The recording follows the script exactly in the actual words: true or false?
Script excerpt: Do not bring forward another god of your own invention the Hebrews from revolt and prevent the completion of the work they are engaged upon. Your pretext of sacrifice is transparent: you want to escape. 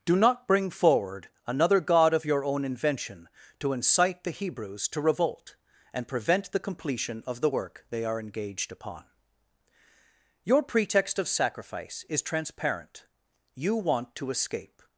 false